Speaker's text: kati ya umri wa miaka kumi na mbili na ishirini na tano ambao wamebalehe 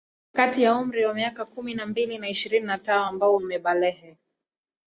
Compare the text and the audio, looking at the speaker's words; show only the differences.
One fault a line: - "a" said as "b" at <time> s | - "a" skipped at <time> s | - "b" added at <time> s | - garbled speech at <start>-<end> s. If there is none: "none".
none